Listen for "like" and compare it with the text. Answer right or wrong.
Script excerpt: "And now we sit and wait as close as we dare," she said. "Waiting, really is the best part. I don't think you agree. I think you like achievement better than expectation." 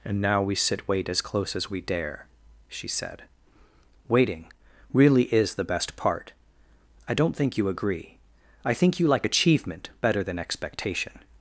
right